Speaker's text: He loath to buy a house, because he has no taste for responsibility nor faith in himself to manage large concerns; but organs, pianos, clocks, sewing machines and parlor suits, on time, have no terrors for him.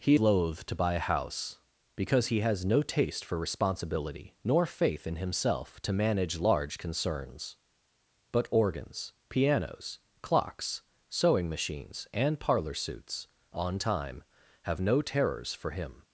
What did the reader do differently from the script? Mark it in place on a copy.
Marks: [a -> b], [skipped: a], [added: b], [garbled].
He loath to buy a house, because he has no taste for responsibility nor faith in himself to manage large concerns; but organs, pianos, clocks, sewing machines and parlor suits, on time, have no terrors for him.